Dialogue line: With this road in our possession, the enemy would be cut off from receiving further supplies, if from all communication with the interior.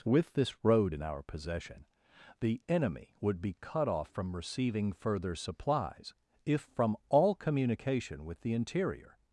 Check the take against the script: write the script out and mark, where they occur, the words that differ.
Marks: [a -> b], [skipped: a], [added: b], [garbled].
With this road in our possession, the enemy would be cut off from receiving further supplies, if from all communication with the interior.